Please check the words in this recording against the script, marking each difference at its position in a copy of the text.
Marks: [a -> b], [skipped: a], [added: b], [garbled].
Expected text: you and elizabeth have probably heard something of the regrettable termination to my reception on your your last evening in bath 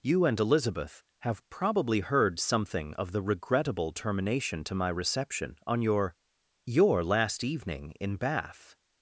you and elizabeth have probably heard something of the regrettable termination to my reception on your your last evening in bath